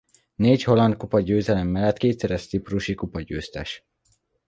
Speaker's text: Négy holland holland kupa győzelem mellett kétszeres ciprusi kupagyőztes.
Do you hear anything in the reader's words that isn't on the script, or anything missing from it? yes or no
yes